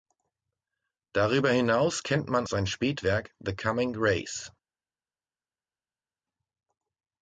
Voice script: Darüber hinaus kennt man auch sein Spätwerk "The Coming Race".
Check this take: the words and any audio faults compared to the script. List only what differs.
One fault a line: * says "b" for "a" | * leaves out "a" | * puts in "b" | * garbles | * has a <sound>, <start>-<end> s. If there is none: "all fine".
* leaves out "auch"